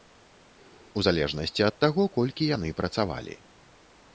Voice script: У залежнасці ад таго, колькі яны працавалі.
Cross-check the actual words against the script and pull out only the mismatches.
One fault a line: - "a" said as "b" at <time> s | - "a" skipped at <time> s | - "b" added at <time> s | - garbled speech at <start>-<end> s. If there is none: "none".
none